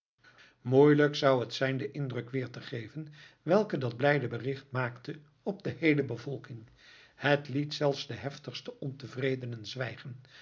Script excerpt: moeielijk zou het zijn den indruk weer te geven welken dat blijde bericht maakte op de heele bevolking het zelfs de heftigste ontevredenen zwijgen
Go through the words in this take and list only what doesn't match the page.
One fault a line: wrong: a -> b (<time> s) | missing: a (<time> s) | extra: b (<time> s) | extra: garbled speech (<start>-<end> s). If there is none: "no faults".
extra: liet (7.5 s)